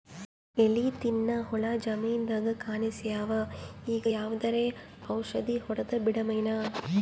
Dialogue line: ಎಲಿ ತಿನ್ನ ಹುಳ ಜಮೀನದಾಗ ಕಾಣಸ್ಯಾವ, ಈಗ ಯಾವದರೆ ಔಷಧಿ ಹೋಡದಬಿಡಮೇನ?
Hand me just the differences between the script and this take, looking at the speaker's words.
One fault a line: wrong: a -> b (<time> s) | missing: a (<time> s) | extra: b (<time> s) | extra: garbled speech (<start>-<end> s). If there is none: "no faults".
no faults